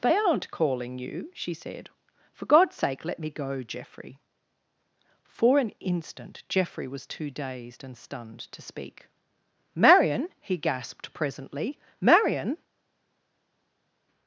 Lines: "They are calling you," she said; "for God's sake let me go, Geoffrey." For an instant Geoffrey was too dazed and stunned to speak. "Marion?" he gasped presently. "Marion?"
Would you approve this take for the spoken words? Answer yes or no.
no